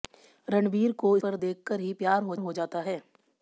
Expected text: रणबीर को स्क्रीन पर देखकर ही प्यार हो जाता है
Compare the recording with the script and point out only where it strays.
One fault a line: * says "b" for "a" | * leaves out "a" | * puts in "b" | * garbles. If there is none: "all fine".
* leaves out "स्क्रीन"
* puts in "हो"